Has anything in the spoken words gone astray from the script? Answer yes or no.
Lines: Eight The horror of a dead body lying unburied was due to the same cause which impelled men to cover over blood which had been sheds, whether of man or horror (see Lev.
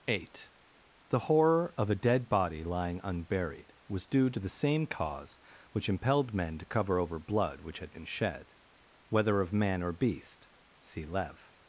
yes